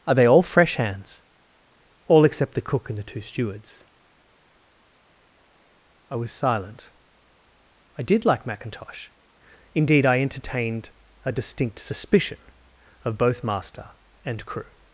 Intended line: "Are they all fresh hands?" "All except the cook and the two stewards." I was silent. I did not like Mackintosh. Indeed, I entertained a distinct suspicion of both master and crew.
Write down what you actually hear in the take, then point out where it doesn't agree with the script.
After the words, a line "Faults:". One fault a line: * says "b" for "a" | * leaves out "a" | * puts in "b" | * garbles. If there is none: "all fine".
"Are they all fresh hands?" "All except the cook and the two stewards." I was silent. I did like Mackintosh. Indeed, I entertained a distinct suspicion of both master and crew.
Faults:
* leaves out "not"